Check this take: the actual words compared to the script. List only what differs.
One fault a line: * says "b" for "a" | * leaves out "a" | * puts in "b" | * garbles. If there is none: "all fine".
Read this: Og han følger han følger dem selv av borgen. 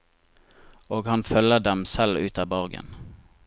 * leaves out "han følger"
* puts in "ut"